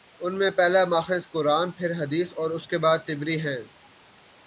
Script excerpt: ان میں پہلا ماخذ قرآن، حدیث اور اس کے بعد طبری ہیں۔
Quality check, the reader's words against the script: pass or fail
fail